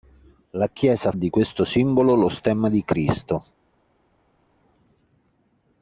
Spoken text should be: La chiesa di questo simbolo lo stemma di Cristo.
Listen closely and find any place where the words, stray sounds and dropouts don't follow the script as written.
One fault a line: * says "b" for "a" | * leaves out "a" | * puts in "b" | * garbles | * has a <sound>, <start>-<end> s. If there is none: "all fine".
all fine